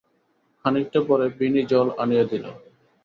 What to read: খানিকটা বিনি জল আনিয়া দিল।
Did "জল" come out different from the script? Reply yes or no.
no